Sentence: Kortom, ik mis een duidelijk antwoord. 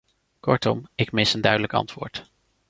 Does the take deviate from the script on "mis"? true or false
false